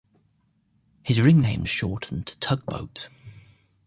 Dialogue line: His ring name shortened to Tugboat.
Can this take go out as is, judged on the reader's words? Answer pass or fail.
pass